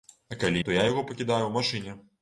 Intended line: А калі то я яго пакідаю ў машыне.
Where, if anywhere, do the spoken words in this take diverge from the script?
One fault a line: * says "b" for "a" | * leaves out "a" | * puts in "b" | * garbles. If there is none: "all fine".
all fine